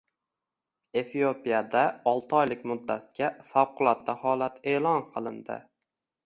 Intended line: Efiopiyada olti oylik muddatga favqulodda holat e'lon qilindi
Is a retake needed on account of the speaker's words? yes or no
no